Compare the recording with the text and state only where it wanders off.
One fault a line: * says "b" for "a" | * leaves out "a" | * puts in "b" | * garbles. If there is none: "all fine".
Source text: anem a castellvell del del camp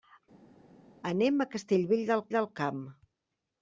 all fine